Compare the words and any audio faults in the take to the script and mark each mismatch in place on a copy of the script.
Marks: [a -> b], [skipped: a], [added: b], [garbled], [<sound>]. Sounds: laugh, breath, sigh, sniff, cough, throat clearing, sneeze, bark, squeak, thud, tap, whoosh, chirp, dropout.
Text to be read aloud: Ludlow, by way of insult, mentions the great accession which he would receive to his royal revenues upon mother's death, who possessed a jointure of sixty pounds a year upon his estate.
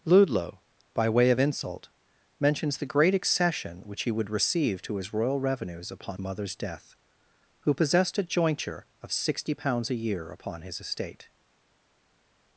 Ludlow, by way of insult, mentions the great accession which he would receive to his royal revenues upon mother's death, who possessed a jointure of sixty pounds a year upon his estate.